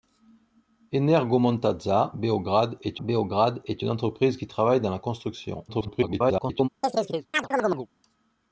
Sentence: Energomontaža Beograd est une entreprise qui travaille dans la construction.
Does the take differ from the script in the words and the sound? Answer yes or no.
yes